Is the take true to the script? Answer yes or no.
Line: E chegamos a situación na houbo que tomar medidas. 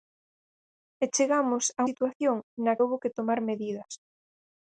yes